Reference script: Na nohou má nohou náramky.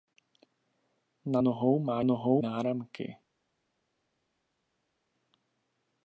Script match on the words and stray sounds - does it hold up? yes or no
yes